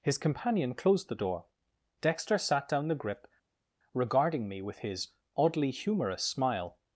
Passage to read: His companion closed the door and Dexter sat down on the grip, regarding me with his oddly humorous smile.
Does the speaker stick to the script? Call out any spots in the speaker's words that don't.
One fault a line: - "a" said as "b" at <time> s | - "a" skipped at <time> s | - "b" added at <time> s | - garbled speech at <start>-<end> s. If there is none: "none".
- "and" skipped at 1.4 s
- "on" skipped at 2.9 s